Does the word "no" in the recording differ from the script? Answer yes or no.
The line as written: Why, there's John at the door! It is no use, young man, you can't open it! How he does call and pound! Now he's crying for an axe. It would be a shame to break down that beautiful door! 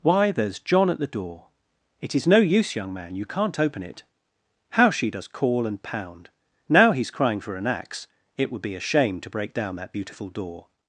no